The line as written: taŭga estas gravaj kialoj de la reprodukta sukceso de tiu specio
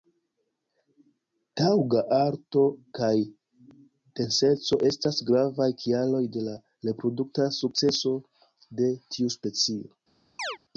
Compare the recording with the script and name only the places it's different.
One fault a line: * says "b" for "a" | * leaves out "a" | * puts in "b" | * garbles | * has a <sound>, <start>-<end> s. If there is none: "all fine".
* puts in "alto kaj denseco"
* has a chirp, 10.4-10.6 s